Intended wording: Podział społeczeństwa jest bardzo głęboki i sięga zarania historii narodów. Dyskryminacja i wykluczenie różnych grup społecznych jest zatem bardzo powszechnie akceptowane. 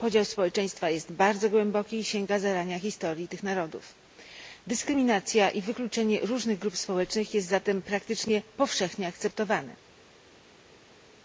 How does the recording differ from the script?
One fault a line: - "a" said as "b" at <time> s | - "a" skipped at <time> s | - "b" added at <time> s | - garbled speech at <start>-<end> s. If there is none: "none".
- "tych" added at 3.3 s
- "bardzo" said as "praktycznie" at 7.8 s